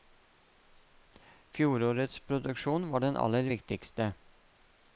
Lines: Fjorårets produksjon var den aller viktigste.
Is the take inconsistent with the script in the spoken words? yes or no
no